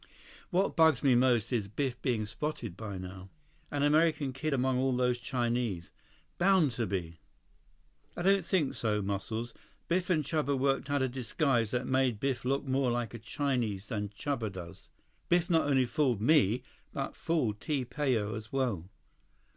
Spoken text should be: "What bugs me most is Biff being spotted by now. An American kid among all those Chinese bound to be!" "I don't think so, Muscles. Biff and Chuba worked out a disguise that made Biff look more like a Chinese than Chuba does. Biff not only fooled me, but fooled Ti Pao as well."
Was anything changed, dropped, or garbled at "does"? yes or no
no